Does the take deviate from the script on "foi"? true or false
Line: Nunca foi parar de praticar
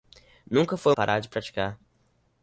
false